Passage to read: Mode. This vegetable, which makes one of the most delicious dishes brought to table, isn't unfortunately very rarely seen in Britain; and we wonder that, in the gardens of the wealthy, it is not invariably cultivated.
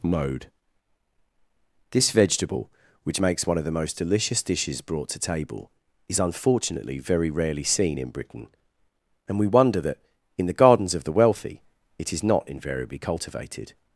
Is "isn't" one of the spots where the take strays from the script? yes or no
yes